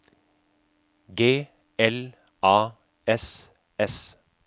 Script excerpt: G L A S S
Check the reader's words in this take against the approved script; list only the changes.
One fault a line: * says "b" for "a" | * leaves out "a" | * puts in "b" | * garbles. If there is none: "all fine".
all fine